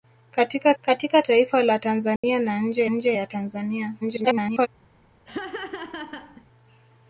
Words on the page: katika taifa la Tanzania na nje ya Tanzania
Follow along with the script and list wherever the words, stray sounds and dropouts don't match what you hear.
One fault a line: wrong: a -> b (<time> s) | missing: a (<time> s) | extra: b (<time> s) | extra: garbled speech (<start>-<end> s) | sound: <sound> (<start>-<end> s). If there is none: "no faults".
extra: katika (0.8 s)
sound: dropout (2.2-2.2 s)
extra: nje (2.9 s)
extra: garbled speech (4.0-4.7 s)
sound: laugh (5.3-6.4 s)